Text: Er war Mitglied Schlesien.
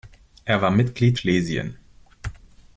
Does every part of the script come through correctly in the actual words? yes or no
yes